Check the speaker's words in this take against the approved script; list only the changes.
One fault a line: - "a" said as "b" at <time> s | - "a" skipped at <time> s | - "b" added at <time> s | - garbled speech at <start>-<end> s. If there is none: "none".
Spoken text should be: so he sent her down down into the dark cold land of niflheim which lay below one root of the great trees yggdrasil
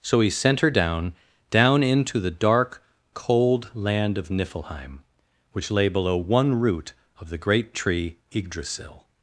- "trees" said as "tree" at 7.7 s